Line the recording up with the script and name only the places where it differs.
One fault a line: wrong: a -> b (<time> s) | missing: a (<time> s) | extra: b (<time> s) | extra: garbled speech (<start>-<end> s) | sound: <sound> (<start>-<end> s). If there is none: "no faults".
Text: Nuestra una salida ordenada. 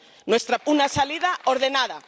no faults